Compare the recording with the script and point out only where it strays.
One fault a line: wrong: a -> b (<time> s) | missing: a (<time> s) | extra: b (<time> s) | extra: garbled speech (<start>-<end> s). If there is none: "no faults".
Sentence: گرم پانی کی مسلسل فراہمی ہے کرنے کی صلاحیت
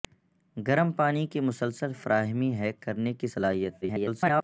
extra: garbled speech (3.8-4.4 s)